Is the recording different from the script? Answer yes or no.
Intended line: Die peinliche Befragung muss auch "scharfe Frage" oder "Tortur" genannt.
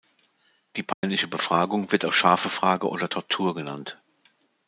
yes